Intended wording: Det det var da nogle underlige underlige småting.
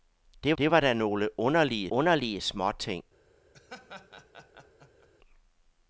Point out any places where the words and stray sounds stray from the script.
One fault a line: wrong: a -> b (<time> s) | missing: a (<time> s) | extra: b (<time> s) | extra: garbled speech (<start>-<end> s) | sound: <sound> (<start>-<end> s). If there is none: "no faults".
sound: laugh (3.5-5.1 s)